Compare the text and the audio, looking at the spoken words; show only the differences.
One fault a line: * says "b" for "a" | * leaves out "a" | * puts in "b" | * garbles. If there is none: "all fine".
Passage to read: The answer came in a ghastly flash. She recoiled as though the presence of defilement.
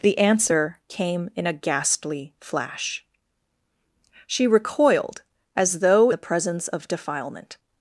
all fine